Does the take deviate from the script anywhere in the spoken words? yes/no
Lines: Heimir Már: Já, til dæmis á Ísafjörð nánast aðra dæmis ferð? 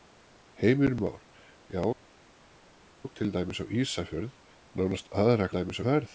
no